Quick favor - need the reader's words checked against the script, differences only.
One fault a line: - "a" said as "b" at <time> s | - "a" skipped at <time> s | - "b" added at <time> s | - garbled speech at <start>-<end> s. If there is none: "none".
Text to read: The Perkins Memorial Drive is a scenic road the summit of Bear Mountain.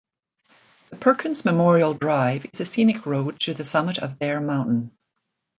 - "to" added at 3.4 s